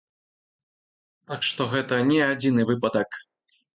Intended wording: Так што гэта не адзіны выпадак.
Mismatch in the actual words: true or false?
false